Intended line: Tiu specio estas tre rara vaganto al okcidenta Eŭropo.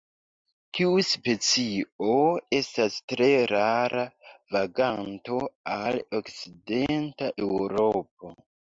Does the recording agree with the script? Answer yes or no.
yes